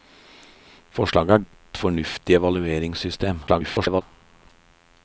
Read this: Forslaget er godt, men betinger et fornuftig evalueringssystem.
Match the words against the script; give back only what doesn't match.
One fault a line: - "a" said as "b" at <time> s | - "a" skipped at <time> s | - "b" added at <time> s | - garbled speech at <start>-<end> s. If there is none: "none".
- "godt men betinger" skipped at 1.4 s
- garbled speech at 3.5-4.0 s